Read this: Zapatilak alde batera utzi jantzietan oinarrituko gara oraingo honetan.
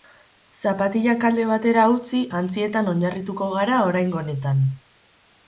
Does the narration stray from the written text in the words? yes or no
no